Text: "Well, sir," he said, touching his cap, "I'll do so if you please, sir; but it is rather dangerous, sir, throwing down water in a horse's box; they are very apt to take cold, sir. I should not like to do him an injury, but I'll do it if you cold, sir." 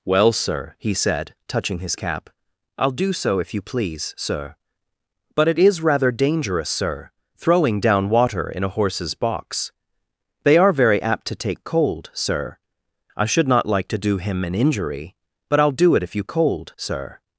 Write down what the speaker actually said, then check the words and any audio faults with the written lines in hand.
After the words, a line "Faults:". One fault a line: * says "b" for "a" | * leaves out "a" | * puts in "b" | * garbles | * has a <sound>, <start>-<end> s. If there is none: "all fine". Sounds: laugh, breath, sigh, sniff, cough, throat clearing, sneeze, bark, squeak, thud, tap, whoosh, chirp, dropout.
"Well, sir," he said, touching his cap, "I'll do so if you please, sir; but it is rather dangerous, sir, throwing down water in a horse's box; they are very apt to take cold, sir. I should not like to do him an injury, but I'll do it if you cold, sir."
Faults:
all fine